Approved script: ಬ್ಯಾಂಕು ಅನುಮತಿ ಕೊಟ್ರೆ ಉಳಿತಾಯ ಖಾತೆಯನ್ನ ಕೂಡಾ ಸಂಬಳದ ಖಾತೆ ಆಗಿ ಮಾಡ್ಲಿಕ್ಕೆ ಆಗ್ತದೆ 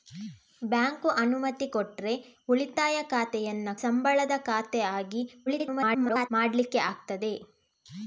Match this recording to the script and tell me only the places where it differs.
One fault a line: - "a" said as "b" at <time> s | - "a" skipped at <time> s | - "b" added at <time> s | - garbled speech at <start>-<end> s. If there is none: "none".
- "ಕೂಡಾ" skipped at 3.7 s
- garbled speech at 5.5-6.3 s